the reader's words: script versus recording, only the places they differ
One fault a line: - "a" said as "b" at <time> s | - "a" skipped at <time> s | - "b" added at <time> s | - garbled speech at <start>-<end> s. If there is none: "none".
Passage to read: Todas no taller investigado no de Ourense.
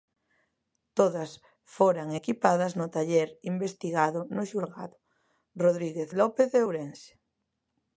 - "foran equipadas" added at 1.8 s
- "xulgado Rodríguez López" added at 4.5 s